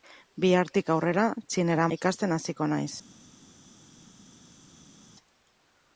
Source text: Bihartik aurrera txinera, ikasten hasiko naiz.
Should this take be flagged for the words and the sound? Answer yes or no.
no